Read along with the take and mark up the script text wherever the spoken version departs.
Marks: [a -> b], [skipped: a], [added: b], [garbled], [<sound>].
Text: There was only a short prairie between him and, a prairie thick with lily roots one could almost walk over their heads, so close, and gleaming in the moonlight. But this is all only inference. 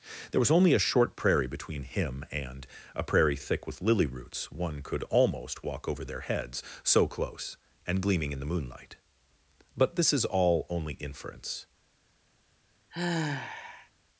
There was only a short prairie between him and, a prairie thick with lily roots one could almost walk over their heads, so close, and gleaming in the moonlight. But this is all only inference. [sigh]